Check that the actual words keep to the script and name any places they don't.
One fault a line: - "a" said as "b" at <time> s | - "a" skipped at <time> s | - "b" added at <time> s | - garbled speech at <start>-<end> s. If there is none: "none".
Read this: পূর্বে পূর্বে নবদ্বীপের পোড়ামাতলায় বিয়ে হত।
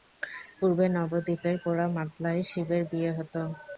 - "পূর্বে" skipped at 0.8 s
- "শিবের" added at 2.5 s